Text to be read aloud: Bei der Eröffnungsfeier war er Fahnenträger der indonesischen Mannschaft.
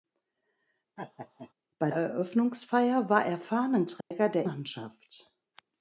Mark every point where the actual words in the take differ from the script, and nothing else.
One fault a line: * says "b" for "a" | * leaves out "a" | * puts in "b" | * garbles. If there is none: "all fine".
* leaves out "der"
* leaves out "indonesischen"